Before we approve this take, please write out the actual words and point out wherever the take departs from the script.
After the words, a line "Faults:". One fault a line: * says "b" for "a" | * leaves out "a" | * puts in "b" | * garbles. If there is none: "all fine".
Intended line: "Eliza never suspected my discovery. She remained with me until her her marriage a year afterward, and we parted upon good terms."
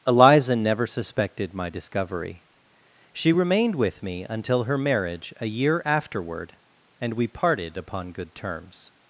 "Eliza never suspected my discovery. She remained with me until her marriage a year afterward, and we parted upon good terms."
Faults:
* leaves out "her"